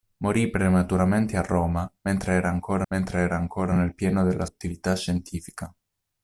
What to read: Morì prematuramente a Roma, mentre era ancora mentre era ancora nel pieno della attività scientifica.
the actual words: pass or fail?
pass